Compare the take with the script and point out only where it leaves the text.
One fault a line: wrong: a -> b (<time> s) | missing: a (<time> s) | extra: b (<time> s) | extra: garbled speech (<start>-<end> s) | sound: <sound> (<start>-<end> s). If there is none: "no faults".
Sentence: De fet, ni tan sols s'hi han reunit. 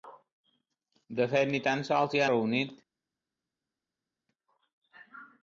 missing: han (2.2 s)